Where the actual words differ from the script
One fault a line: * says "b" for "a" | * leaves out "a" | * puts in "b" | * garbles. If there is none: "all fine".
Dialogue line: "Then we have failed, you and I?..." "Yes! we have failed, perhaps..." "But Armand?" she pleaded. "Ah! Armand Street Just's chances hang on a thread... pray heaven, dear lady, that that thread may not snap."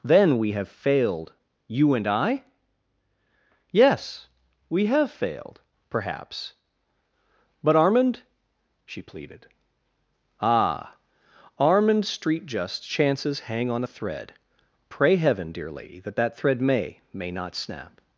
* puts in "may"